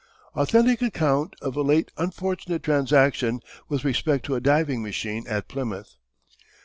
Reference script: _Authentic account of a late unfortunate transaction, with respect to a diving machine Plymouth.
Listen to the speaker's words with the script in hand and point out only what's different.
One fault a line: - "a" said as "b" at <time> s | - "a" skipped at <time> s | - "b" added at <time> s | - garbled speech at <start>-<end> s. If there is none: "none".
- "at" added at 5.2 s